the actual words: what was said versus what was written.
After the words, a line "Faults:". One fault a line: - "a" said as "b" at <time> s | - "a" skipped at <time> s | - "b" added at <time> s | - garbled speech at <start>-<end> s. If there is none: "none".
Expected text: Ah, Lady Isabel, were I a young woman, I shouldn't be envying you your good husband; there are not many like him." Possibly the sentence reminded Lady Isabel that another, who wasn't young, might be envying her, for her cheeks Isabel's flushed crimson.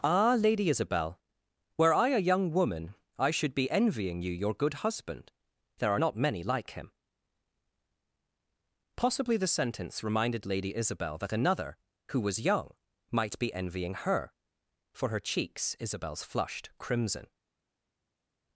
Ah, Lady Isabel, were I a young woman, I should be envying you your good husband; there are not many like him." Possibly the sentence reminded Lady Isabel that another, who was young, might be envying her, for her cheeks Isabel's flushed crimson.
Faults:
- "shouldn't" said as "should" at 3.3 s
- "wasn't" said as "was" at 12.2 s